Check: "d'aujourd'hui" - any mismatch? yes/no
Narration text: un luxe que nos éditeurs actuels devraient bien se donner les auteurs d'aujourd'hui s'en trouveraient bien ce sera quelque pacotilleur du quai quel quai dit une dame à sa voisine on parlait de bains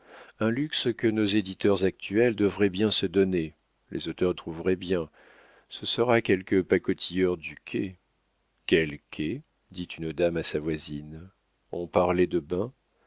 yes